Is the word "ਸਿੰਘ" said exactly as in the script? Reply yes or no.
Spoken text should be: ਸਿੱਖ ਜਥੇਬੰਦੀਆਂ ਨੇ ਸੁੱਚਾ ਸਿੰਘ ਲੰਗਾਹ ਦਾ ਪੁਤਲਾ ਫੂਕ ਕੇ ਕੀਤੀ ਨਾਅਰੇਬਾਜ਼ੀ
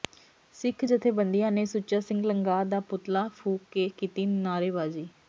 yes